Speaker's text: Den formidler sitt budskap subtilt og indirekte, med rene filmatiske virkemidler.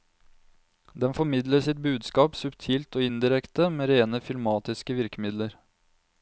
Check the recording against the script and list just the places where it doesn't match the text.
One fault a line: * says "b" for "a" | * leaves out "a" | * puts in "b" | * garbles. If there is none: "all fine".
all fine